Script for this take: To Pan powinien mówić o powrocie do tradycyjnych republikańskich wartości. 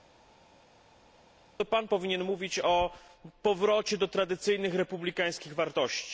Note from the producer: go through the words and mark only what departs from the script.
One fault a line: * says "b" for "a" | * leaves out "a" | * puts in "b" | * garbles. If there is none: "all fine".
all fine